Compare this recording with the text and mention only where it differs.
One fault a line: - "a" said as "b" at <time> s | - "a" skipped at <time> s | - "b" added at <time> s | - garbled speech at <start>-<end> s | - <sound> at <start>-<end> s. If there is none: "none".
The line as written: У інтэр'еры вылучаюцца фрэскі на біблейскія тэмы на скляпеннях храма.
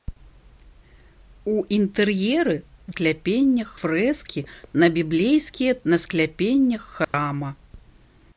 - "вылучаюцца" said as "скляпеннях" at 2.9 s
- "тэмы" skipped at 5.7 s
- dropout at 7.0-7.1 s